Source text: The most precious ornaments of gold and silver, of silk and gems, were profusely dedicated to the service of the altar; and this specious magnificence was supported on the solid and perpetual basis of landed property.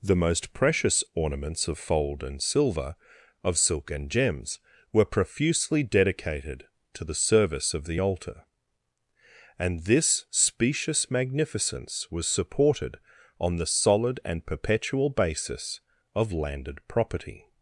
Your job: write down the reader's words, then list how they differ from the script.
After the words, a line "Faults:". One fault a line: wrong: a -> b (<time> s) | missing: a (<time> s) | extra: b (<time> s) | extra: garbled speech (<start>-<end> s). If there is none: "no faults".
The most precious ornaments of fold and silver, of silk and gems, were profusely dedicated to the service of the altar; and this specious magnificence was supported on the solid and perpetual basis of landed property.
Faults:
wrong: gold -> fold (1.8 s)